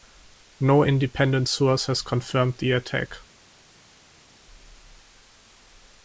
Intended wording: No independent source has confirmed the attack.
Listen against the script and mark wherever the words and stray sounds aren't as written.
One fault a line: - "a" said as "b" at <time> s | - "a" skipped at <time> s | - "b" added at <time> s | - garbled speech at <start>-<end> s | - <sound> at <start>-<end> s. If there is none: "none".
none